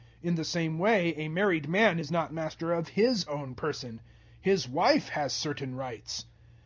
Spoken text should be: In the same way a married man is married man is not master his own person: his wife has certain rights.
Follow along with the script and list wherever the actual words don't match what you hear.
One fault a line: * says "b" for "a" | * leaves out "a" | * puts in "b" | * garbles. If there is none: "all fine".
* leaves out "married man is"
* puts in "of"